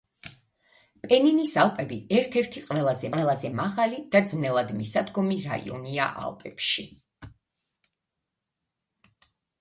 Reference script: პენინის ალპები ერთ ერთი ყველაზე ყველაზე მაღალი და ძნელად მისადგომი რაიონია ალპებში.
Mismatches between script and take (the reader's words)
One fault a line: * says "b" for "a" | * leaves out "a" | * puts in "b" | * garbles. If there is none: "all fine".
all fine